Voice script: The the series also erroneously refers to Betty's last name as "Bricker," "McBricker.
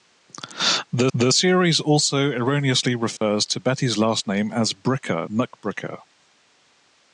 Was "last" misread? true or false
false